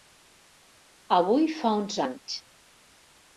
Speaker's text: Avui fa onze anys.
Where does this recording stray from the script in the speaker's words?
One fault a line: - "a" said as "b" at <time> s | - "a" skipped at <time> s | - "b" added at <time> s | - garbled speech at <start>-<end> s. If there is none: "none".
none